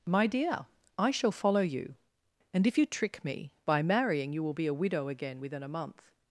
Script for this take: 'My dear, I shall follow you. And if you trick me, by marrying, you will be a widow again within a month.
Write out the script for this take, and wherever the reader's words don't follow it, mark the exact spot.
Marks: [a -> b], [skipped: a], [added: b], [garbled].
'My dear, I shall follow you. And if you trick me, by marrying, you will be a widow again within a month.